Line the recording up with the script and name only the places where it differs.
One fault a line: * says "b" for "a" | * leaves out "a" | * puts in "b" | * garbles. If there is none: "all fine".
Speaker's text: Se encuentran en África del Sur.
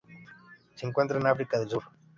all fine